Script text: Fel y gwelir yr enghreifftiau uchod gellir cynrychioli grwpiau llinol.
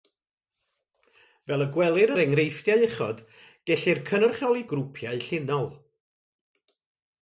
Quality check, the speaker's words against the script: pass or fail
pass